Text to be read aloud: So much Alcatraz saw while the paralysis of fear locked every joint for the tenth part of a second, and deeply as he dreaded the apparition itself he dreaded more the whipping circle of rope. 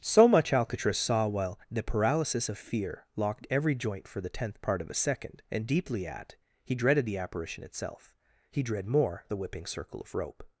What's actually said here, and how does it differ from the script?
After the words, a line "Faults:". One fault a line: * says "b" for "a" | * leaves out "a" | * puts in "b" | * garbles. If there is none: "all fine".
So much Alcatraz saw while the paralysis of fear locked every joint for the tenth part of a second, and deeply at he dreaded the apparition itself he dread more the whipping circle of rope.
Faults:
* says "at" for "as"
* says "dread" for "dreaded"